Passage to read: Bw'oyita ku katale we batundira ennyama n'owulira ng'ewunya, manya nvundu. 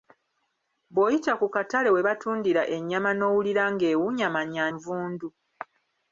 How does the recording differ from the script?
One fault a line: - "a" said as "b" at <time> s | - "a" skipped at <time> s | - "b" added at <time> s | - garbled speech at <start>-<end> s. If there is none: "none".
none